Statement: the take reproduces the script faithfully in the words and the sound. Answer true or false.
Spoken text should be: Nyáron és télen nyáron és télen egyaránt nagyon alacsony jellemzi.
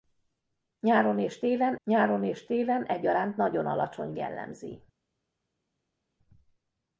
true